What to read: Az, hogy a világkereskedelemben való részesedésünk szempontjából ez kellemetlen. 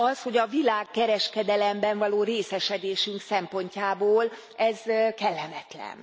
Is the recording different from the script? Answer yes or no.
no